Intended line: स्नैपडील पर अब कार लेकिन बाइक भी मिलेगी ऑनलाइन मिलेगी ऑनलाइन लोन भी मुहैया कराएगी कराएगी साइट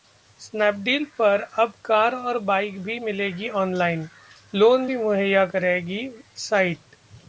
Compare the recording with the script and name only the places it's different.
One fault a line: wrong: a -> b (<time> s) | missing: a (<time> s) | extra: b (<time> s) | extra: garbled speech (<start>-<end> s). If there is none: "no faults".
wrong: लेकिन -> और (2.1 s)
missing: मिलेगी ऑनलाइन (4.1 s)
missing: कराएगी (6.1 s)